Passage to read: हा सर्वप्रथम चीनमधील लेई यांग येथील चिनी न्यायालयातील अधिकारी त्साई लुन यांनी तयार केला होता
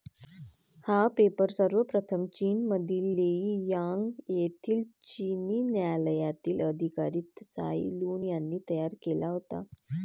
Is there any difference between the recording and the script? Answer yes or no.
yes